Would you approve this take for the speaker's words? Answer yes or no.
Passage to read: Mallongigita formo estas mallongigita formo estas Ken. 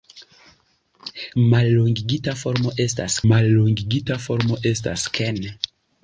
yes